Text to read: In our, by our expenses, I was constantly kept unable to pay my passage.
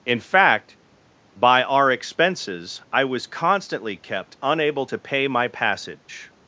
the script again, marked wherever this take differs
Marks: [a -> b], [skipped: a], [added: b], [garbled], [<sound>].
In [our, -> fact] by our expenses, I was constantly kept unable to pay my passage.